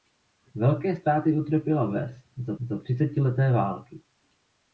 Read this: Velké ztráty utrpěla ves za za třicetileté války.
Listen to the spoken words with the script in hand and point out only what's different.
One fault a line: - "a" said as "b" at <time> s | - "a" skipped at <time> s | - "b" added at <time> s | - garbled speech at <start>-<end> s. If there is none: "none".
none